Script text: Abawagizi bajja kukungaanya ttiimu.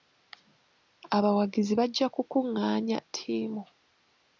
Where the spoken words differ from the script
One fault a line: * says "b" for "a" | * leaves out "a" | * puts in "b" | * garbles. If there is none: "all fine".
all fine